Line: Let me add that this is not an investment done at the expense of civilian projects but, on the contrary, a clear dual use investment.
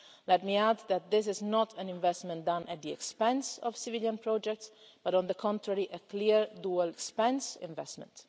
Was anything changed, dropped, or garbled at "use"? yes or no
yes